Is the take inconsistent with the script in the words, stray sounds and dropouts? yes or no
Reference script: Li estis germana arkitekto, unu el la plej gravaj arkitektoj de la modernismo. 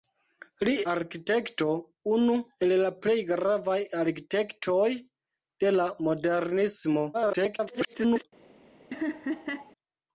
yes